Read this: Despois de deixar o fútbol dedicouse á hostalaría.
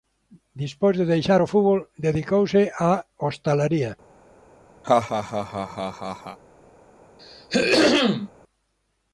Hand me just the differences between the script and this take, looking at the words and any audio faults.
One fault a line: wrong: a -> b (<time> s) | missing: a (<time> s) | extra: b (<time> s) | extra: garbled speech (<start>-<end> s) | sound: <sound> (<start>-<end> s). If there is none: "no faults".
sound: laugh (4.8-6.4 s)
sound: throat clearing (7.2-8.3 s)